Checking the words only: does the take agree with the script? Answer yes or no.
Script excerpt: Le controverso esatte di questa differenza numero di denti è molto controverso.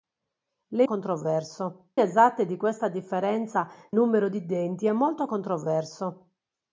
yes